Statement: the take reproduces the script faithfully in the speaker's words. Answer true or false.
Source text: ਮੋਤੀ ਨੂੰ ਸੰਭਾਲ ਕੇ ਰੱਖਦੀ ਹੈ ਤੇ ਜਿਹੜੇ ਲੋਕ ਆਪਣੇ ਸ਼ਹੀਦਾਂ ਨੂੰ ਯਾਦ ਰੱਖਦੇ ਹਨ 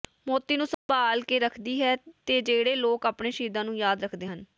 true